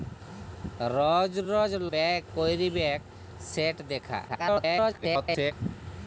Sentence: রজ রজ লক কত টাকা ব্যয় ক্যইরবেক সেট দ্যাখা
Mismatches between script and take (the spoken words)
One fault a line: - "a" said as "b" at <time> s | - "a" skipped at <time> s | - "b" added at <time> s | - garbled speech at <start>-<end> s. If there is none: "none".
- "লক কত টাকা" skipped at 1.7 s
- garbled speech at 4.3-5.5 s